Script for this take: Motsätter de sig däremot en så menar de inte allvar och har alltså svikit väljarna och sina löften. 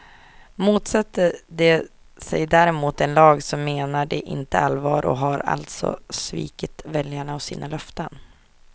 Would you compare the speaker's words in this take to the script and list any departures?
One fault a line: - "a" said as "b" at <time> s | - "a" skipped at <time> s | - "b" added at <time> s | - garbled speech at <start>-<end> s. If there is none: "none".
- "lag" added at 3.1 s